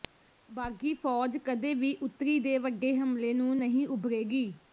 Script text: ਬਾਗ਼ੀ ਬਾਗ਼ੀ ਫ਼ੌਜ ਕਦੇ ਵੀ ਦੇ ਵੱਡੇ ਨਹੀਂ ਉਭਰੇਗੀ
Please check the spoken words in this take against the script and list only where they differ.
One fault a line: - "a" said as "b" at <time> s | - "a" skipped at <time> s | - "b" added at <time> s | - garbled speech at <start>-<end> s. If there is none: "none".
- "ਬਾਗ਼ੀ" skipped at 0.9 s
- "ਉੱਤਰੀ" added at 2.0 s
- "ਹਮਲੇ ਨੂੰ" added at 3.0 s